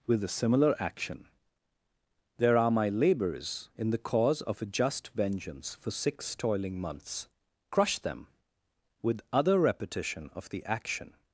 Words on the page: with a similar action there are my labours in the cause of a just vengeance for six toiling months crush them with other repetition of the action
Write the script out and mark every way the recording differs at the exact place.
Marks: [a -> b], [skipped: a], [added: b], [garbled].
with a similar action there are my labours in the cause of a just vengeance for six toiling months crush them with other repetition of the action